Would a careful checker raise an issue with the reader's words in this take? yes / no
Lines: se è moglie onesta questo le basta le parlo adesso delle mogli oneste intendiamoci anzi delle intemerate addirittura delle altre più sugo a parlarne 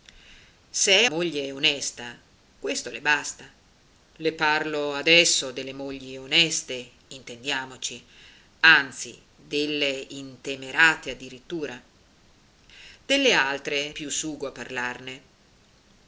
no